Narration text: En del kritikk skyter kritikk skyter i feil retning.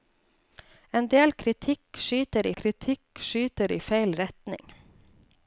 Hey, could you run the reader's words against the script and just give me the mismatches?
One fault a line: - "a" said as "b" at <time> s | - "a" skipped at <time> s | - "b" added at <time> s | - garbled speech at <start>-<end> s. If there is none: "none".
none